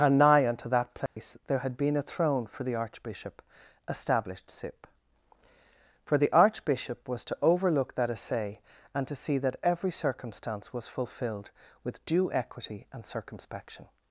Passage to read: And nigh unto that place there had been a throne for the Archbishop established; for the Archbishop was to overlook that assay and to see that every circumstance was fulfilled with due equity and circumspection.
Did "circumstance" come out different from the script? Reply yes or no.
no